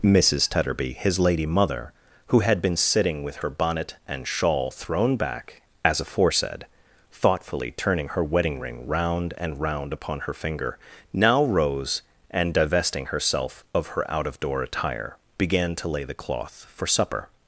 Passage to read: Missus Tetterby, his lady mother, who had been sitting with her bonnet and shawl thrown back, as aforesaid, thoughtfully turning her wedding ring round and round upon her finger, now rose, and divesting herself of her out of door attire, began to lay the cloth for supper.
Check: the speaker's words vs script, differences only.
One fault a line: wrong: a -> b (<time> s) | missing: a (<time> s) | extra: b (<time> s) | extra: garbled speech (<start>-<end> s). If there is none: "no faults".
no faults